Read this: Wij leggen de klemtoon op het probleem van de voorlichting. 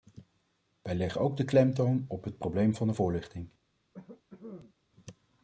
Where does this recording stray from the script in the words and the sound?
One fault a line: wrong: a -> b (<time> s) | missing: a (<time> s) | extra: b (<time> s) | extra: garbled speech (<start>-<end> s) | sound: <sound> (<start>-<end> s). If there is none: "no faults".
extra: ook (1.2 s)
sound: cough (3.9-4.7 s)